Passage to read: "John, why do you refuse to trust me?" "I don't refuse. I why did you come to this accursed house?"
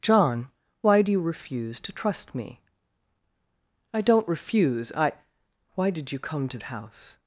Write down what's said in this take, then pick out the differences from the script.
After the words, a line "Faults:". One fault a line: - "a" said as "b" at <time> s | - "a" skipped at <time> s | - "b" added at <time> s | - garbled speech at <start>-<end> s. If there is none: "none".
"John, why do you refuse to trust me?" "I don't refuse. I why did you come to house?"
Faults:
- "this accursed" skipped at 6.6 s